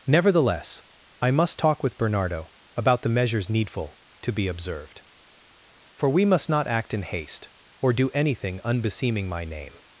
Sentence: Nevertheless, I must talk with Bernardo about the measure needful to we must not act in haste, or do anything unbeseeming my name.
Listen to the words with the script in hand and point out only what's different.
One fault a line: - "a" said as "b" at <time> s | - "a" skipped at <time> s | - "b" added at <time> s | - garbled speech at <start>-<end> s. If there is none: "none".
- "measure" said as "measures" at 3.1 s
- "be observed For" added at 4.3 s